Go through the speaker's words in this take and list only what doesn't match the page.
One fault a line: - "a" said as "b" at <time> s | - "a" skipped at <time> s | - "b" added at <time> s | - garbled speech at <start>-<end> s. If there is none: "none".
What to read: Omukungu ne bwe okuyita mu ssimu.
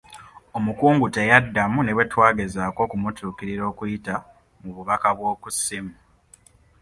- "teyaddamu" added at 1.1 s
- "twagezaako okumutuukirira" added at 2.1 s
- "bubaka bw'oku" added at 4.7 s